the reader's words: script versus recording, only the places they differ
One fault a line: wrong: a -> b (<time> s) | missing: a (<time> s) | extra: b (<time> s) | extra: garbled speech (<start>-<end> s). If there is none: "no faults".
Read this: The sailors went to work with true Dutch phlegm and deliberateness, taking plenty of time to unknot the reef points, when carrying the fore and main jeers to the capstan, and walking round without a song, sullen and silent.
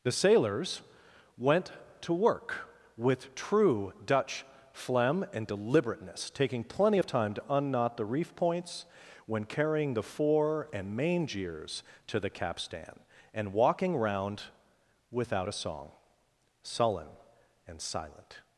no faults